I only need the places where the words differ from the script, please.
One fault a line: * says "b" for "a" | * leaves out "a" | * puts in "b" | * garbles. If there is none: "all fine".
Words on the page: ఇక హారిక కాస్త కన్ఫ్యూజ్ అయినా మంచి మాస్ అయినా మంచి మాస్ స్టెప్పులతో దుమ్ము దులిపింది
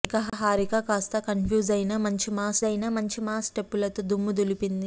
all fine